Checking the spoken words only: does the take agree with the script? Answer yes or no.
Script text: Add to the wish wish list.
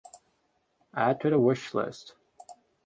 no